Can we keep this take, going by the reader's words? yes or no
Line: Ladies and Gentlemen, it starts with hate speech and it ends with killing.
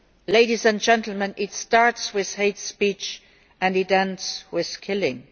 yes